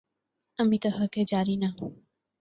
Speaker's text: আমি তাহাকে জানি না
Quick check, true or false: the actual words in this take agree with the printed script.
true